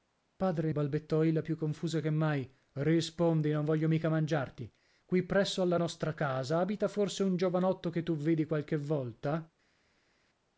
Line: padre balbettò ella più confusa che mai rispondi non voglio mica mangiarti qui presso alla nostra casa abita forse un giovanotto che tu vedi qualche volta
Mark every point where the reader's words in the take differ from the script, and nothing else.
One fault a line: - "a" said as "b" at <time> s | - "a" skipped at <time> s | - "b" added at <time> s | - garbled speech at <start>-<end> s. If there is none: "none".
none